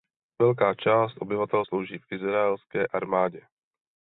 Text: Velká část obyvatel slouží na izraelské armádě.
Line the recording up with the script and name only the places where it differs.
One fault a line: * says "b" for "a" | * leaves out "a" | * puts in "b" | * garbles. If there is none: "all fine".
* says "v" for "na"